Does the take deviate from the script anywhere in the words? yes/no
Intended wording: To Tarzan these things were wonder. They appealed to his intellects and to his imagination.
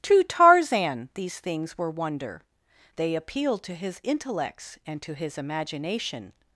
no